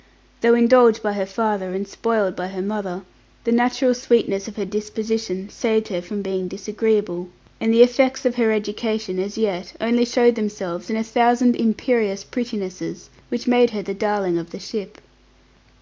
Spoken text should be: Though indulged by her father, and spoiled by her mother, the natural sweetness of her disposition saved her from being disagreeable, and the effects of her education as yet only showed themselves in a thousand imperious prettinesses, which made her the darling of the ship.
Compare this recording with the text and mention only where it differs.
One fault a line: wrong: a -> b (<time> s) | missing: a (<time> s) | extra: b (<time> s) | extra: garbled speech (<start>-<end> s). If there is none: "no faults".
no faults